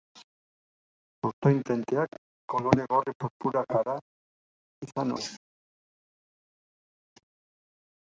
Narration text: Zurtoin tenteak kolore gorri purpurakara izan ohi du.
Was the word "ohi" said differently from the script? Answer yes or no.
yes